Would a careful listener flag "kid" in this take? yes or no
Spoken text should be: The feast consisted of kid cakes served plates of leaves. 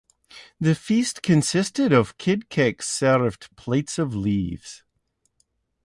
no